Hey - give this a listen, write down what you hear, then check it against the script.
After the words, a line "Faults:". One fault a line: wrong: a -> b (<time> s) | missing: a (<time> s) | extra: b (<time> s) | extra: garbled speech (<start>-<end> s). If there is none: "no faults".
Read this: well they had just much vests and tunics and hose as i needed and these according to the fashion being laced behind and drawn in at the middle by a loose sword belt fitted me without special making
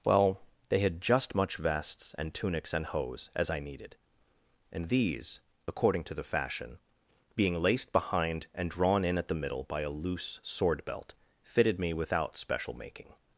well they had just much vests and tunics and hose as i needed and these according to the fashion being laced behind and drawn in at the middle by a loose sword belt fitted me without special making
Faults:
no faults